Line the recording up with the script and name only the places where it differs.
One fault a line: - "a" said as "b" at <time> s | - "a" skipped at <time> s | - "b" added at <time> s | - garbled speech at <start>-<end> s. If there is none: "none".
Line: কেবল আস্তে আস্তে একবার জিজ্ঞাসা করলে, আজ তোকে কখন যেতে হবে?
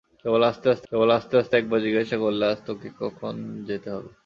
- "কেবল আস্তে আস্তে" added at 0.9 s